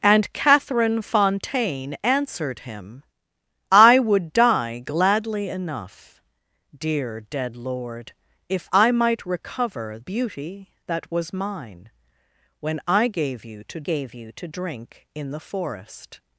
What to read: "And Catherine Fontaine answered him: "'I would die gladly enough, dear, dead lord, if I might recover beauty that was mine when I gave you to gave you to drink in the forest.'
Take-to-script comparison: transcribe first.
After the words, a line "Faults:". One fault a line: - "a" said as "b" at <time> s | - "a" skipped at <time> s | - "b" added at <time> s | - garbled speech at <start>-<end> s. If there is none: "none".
"And Catherine Fontaine answered him: "'I would die gladly enough, dear, dead lord, if I might recover beauty that was mine when I gave you to gave you to drink in the forest.'
Faults:
none